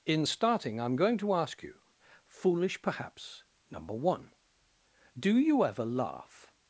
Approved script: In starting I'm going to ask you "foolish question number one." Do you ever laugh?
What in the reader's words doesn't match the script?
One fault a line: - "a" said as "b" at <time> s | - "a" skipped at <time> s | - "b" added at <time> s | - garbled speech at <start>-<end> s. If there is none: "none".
- "question" said as "perhaps" at 2.8 s